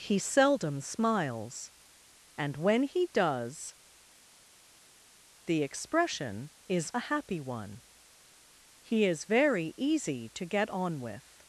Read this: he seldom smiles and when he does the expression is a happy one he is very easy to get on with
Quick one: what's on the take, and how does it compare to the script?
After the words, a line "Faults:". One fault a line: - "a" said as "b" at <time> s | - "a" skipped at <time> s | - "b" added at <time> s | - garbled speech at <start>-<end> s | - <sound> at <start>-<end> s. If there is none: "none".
he seldom smiles and when he does the expression is a happy one he is very easy to get on with
Faults:
none